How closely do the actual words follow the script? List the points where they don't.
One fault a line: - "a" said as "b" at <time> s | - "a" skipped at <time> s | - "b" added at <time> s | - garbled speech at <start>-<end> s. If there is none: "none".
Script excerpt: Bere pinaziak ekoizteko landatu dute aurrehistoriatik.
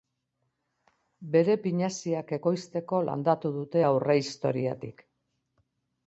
none